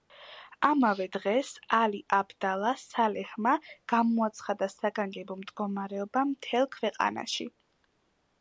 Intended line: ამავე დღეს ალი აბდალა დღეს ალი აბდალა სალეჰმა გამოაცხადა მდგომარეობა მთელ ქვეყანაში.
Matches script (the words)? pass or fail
fail